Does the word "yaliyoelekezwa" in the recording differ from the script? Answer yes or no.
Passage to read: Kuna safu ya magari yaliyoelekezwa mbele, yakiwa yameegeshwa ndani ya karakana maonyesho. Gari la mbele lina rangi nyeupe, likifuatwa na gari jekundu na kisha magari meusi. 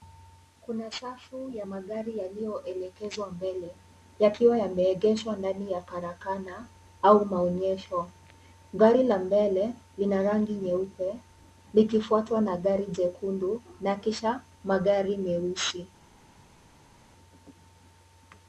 no